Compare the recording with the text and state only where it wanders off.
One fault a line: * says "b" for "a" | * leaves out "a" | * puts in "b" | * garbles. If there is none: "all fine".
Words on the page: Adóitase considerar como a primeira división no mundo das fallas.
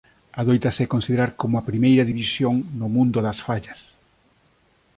all fine